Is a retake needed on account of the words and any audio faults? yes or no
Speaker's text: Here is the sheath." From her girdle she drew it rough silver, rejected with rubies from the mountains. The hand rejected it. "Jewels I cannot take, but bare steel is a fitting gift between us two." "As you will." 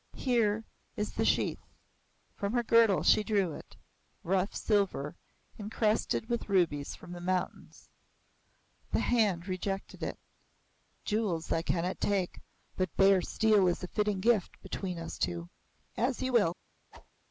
yes